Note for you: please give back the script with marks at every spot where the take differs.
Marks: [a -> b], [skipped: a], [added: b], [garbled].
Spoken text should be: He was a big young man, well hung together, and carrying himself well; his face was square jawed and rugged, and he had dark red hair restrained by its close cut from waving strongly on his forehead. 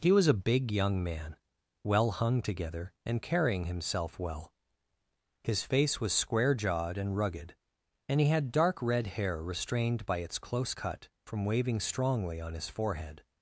He was a big young man, well hung together, and carrying himself well; his face was square jawed and rugged, and he had dark red hair restrained by its close cut from waving strongly on his forehead.